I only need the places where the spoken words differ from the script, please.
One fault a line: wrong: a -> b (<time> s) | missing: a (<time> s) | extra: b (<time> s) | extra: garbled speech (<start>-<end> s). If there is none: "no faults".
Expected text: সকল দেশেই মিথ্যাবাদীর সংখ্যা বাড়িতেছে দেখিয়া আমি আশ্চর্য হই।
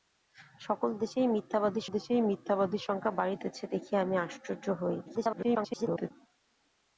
extra: দেশেই মিথ্যাবাদীর (1.9 s)
extra: garbled speech (5.1-6.1 s)